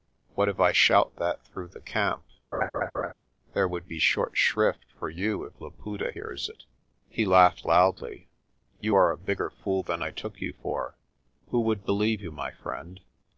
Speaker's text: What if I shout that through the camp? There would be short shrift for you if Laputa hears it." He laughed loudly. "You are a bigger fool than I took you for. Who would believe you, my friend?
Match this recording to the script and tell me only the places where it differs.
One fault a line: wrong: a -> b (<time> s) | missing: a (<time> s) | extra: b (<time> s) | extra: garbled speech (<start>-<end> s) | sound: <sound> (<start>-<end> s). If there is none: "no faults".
sound: laugh (2.5-3.1 s)